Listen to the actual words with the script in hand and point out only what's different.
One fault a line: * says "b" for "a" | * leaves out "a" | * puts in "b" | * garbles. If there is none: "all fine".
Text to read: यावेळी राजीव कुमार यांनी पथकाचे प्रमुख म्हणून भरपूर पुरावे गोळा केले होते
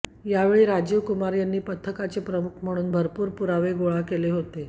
all fine